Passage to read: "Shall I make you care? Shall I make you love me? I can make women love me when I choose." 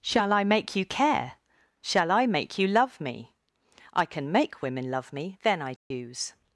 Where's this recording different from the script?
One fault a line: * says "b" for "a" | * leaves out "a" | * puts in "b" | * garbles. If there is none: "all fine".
* says "then" for "when"